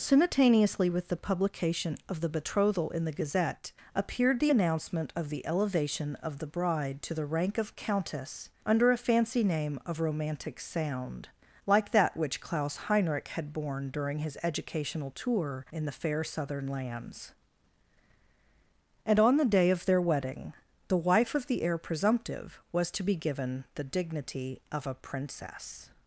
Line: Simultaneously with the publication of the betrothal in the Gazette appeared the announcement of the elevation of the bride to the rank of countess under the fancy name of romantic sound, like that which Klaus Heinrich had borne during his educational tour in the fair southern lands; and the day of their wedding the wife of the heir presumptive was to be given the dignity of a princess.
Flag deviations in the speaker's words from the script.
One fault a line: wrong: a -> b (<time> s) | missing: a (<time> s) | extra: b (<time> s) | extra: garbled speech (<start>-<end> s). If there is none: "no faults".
wrong: the -> a (8.9 s)
extra: on (19.2 s)